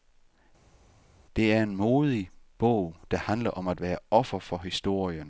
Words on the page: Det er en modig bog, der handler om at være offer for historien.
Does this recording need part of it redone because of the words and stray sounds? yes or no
no